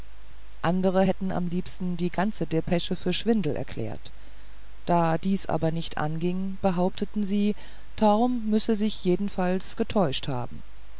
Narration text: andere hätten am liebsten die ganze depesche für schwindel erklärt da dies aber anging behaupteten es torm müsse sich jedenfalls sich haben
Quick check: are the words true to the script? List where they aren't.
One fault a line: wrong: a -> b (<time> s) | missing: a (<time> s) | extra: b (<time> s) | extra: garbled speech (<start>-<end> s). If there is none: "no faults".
extra: nicht (5.7 s)
wrong: es -> sie (7.2 s)
wrong: sich -> getäuscht (9.7 s)